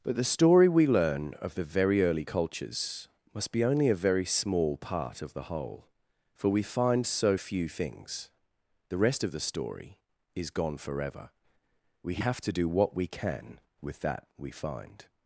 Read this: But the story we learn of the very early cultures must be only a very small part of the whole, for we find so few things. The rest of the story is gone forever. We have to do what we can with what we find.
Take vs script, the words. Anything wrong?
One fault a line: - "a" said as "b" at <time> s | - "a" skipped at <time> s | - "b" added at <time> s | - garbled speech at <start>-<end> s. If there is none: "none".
- "what" said as "that" at 14.0 s